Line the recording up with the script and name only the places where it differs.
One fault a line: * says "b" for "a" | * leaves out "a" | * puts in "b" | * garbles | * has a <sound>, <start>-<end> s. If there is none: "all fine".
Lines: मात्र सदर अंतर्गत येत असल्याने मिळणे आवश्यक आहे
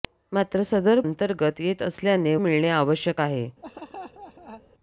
* has a laugh, 3.6-4.6 s